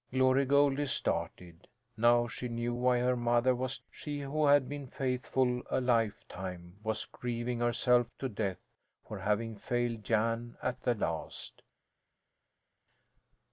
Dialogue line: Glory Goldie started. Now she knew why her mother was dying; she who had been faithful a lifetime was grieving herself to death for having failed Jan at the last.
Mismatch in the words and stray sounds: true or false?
true